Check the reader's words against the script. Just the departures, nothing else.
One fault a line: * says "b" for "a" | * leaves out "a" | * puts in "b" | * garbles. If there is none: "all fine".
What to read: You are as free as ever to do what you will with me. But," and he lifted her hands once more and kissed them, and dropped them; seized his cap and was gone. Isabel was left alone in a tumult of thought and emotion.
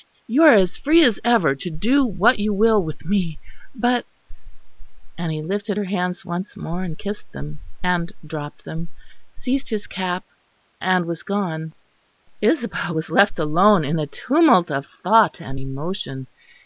all fine